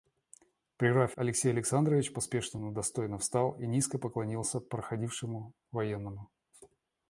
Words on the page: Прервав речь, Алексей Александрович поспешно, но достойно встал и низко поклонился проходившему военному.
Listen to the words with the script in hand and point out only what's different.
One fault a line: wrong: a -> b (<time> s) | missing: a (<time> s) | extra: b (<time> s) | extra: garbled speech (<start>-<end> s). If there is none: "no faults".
missing: речь (1.1 s)